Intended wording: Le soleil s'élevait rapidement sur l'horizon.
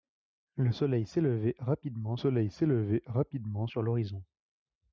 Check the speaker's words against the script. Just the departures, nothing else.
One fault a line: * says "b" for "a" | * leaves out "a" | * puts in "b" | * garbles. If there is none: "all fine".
* puts in "soleil s'élevait rapidement"